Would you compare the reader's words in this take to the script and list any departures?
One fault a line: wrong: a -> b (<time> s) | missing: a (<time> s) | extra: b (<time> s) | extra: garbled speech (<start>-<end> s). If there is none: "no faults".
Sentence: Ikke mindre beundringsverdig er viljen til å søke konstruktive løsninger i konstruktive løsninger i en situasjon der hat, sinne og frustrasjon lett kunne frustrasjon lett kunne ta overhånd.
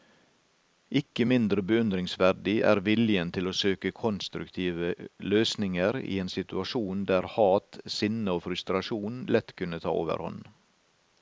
missing: konstruktive løsninger i (6.2 s)
missing: frustrasjon lett kunne (9.8 s)